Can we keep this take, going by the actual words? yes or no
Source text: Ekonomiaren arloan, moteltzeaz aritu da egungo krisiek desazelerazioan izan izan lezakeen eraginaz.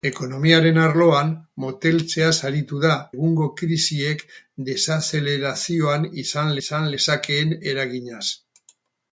yes